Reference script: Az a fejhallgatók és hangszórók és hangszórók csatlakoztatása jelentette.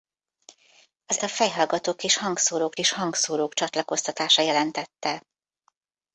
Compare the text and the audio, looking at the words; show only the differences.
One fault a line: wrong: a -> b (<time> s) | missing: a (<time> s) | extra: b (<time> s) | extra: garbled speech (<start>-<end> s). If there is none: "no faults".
no faults